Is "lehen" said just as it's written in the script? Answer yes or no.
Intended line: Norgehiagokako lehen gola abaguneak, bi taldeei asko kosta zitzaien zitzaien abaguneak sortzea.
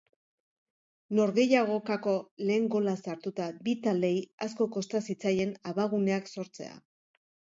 yes